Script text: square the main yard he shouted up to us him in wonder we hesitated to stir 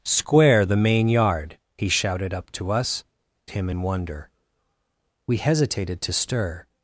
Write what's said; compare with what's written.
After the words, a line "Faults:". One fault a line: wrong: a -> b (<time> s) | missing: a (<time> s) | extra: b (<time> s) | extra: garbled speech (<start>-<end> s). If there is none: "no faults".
square the main yard he shouted up to us him in wonder we hesitated to stir
Faults:
no faults